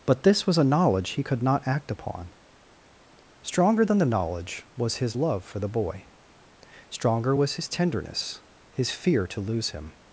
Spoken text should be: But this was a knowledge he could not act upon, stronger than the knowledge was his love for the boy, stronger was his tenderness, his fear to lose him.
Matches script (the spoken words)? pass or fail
pass